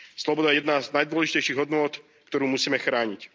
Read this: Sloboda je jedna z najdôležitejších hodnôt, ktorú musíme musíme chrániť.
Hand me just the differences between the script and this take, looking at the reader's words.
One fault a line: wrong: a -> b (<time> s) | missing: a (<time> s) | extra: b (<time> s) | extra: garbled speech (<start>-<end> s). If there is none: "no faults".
missing: musíme (2.8 s)